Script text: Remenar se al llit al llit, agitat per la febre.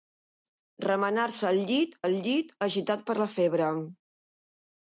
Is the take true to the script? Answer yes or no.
yes